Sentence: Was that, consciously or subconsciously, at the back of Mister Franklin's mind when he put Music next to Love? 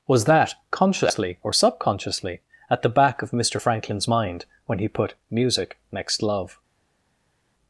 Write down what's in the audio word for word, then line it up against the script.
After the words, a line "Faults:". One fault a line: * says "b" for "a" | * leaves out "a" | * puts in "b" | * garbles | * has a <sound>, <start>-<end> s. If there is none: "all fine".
Was that, consciously or subconsciously, at the back of Mister Franklin's mind when he put Music next Love?
Faults:
* leaves out "to"